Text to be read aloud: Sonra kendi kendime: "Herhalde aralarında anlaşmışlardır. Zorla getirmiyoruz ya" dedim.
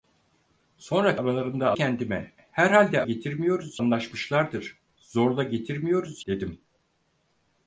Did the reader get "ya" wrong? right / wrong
wrong